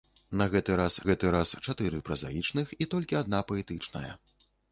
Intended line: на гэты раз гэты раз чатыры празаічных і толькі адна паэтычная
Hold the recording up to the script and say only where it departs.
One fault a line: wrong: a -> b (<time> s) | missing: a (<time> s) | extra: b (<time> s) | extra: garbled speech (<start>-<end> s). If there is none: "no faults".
no faults